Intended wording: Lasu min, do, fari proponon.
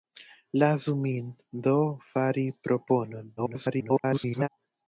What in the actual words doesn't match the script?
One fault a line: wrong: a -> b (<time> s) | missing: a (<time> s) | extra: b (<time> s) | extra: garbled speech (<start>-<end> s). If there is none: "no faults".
extra: garbled speech (3.4-4.5 s)